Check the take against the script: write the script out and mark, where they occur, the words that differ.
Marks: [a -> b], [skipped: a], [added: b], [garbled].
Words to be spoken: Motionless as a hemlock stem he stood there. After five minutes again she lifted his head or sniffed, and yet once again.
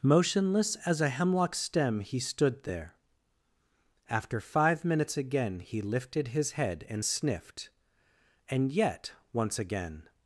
Motionless as a hemlock stem he stood there. After five minutes again [she -> he] lifted his head [or -> and] sniffed, and yet once again.